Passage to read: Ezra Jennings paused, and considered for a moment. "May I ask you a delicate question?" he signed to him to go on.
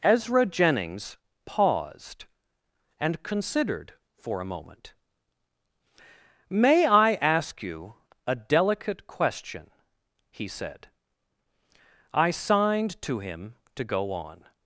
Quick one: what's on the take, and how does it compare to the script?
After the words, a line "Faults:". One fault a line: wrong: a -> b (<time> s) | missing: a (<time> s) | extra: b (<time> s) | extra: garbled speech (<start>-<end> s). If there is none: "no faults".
Ezra Jennings paused, and considered for a moment. "May I ask you a delicate question?" he said. I signed to him to go on.
Faults:
extra: said I (10.5 s)